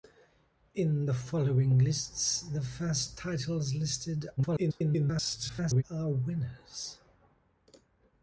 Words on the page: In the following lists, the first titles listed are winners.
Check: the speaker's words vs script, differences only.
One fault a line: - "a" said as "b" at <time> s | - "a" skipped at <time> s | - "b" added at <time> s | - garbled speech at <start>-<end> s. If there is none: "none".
- garbled speech at 4.4-5.8 s